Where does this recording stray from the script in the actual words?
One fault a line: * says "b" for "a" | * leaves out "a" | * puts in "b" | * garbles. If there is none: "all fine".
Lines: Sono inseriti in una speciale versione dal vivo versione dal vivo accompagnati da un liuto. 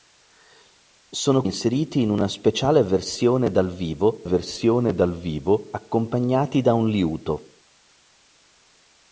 all fine